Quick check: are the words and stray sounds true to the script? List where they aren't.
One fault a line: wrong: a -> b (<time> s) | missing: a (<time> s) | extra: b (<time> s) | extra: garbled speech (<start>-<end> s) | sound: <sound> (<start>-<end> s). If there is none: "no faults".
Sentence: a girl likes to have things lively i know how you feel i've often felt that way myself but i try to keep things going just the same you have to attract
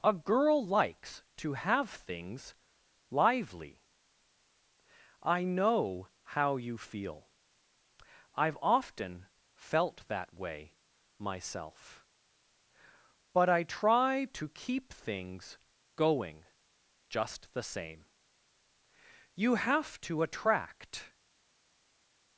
no faults